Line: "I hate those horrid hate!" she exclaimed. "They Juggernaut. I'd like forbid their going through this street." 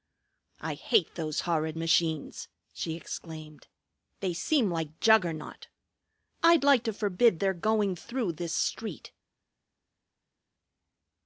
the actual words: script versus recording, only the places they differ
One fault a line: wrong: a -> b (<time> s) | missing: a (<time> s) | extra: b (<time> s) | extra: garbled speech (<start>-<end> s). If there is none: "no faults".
wrong: hate -> machines (1.8 s)
extra: seem like (4.3 s)
extra: to (6.8 s)